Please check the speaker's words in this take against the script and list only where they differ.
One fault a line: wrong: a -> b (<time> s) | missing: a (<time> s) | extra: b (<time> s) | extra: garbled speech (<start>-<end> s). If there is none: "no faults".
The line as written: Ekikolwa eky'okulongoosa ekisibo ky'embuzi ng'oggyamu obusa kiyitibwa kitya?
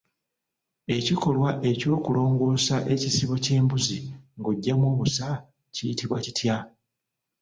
no faults